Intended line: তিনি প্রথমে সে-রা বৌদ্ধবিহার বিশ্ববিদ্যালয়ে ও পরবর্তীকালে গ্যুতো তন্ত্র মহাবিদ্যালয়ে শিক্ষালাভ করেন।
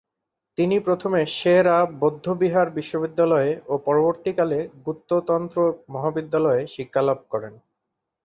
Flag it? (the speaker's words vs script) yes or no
no